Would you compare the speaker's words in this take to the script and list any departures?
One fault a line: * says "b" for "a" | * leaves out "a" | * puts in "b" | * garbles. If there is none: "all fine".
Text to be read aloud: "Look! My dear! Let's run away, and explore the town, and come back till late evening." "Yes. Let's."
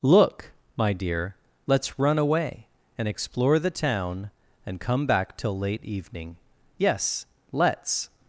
all fine